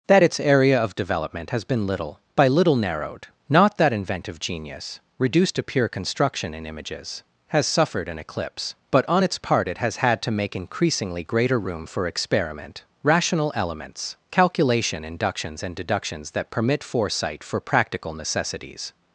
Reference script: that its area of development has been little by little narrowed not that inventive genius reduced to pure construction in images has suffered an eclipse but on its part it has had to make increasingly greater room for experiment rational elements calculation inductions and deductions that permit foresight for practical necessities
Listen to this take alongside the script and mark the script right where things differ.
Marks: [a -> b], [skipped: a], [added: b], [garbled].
that its area of development has been little by little narrowed not that inventive genius reduced to pure construction in images has suffered an eclipse but on its part it has had to make increasingly greater room for experiment rational elements calculation inductions and deductions that permit foresight for practical necessities